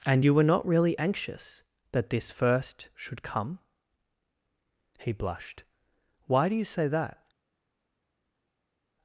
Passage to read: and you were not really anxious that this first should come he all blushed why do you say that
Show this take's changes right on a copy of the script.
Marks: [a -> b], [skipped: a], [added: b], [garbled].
and you were not really anxious that this first should come he [skipped: all] blushed why do you say that